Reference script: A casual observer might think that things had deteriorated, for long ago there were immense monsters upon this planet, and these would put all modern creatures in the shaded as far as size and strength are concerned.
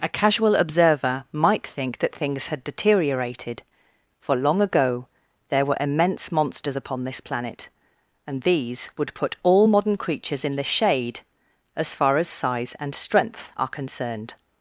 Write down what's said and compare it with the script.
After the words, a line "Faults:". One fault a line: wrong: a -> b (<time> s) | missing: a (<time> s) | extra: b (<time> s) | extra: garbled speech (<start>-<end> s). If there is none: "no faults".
A casual observer might think that things had deteriorated, for long ago there were immense monsters upon this planet, and these would put all modern creatures in the shade as far as size and strength are concerned.
Faults:
wrong: shaded -> shade (10.6 s)